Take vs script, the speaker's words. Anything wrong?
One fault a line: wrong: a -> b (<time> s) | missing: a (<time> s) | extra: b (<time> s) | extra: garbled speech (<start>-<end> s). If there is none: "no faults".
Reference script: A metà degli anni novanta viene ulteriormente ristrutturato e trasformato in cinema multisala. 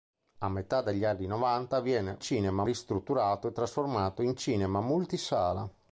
wrong: ulteriormente -> cinema (2.2 s)